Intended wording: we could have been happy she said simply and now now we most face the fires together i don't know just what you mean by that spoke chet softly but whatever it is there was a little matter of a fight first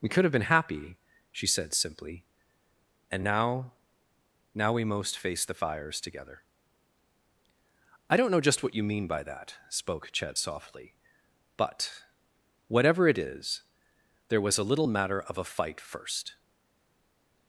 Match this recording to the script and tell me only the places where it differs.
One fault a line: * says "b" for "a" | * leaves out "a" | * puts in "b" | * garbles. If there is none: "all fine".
all fine